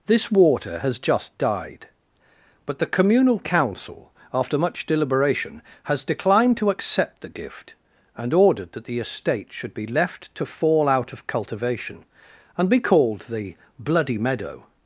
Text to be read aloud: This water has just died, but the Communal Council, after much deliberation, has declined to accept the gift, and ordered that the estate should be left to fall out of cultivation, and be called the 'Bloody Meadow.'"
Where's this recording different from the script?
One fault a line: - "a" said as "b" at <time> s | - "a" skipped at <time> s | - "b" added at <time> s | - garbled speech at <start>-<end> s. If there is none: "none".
none